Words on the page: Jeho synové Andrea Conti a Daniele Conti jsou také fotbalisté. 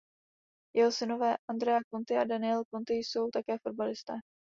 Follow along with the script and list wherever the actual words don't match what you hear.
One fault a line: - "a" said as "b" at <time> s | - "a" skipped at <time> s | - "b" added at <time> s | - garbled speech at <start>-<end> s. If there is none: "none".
none